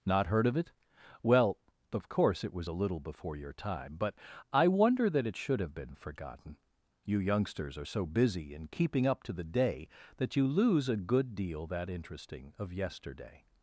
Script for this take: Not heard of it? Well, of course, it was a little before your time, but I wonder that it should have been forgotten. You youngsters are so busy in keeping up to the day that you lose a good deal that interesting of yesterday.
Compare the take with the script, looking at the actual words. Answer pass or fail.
pass